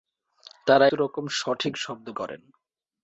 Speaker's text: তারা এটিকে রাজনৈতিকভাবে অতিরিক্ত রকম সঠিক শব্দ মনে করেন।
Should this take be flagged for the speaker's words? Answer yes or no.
yes